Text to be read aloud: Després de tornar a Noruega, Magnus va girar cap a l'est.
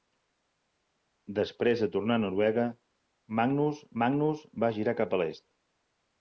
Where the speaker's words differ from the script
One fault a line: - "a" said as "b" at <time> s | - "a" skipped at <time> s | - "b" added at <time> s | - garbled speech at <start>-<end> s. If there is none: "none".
- "Magnus" added at 4.0 s